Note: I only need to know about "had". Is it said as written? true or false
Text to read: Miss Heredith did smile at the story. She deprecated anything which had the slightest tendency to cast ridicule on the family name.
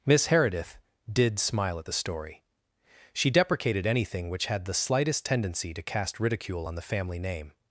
true